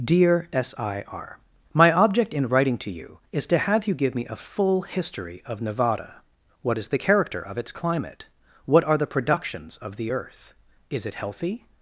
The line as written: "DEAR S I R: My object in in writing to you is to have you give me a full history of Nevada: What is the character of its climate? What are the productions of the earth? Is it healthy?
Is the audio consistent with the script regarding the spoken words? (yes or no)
no